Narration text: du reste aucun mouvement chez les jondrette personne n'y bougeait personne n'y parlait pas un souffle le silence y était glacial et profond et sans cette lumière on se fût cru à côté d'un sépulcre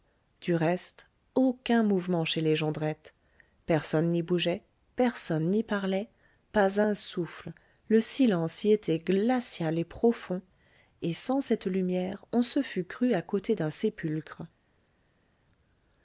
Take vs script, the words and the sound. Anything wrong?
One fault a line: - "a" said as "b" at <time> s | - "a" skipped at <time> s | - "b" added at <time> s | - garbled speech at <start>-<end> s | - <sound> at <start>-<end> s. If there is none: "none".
none